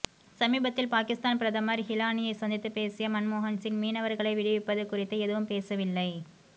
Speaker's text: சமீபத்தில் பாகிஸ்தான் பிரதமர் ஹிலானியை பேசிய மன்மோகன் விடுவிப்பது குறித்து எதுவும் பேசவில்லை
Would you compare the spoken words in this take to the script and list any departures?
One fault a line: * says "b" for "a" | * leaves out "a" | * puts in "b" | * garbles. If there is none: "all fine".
* puts in "சந்தித்து"
* puts in "சிங் மீனவர்களை"